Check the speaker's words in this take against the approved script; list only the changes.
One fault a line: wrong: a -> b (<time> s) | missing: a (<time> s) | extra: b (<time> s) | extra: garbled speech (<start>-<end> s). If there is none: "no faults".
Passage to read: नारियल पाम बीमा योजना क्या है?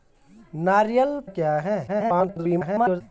missing: पाम बीमा योजना (1.2 s)
extra: garbled speech (1.9-3.0 s)